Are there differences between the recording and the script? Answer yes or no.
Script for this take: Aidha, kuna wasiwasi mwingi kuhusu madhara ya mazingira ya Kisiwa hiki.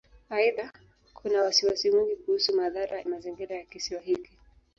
yes